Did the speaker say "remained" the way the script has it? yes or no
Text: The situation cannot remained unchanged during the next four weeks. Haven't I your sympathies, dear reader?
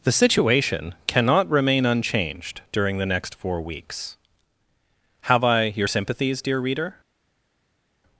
no